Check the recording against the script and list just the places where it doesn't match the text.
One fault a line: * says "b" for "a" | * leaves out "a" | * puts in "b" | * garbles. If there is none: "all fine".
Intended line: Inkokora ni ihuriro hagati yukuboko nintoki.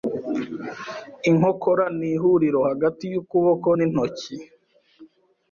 all fine